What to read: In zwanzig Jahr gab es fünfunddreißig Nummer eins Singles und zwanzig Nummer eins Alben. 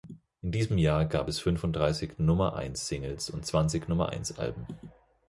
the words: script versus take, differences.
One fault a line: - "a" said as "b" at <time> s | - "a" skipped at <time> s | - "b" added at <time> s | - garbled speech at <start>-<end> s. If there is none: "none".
- "zwanzig" said as "diesem" at 0.5 s